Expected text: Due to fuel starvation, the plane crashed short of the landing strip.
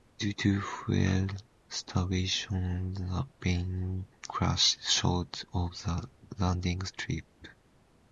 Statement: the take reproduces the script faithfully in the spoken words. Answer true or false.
true